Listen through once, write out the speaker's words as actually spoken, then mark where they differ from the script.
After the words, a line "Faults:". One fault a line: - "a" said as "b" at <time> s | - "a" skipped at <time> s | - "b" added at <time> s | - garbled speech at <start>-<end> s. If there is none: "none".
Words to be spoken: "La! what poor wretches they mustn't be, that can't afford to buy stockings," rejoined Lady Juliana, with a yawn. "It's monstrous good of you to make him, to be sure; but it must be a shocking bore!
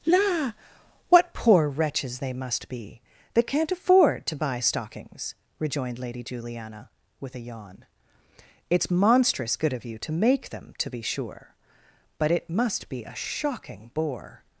"La! what poor wretches they must be, that can't afford to buy stockings," rejoined Lady Juliana, with a yawn. "It's monstrous good of you to make them, to be sure; but it must be a shocking bore!
Faults:
- "mustn't" said as "must" at 2.3 s
- "him" said as "them" at 10.5 s